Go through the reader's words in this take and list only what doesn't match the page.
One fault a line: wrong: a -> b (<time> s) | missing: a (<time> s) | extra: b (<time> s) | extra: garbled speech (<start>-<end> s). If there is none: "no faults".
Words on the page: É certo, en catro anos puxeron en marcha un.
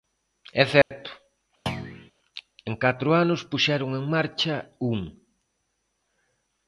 no faults